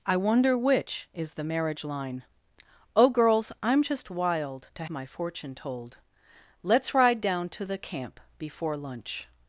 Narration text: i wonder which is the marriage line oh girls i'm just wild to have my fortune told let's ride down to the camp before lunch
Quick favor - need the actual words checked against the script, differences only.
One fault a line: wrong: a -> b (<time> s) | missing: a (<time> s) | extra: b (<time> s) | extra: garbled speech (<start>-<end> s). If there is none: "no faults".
missing: have (4.8 s)